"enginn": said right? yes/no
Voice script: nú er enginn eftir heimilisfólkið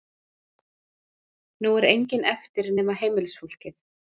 yes